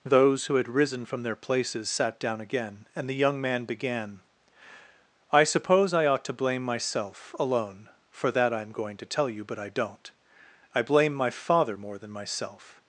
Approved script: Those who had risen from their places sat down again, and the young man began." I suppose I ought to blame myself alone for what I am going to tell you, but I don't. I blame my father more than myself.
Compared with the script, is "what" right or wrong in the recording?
wrong